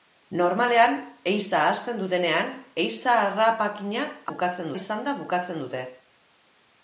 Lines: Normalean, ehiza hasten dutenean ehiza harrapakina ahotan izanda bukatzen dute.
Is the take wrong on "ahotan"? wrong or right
wrong